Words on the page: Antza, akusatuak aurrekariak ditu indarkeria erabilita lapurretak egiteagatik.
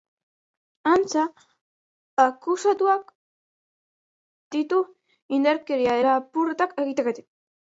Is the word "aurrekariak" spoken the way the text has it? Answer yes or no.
no